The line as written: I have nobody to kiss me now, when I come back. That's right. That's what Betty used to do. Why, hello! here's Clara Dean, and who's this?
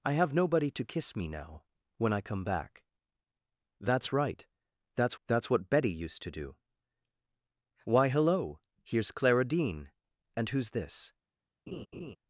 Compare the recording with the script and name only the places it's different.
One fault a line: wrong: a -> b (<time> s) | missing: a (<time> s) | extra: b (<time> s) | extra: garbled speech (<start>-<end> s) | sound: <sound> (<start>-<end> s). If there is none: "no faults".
extra: that's (5.3 s)
sound: laugh (11.7-12.2 s)